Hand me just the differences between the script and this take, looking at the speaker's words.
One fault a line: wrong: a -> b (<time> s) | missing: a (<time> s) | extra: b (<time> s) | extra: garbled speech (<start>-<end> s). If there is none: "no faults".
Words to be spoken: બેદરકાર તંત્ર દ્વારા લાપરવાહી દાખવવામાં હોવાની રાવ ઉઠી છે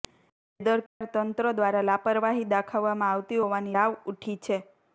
extra: આવતી (3.1 s)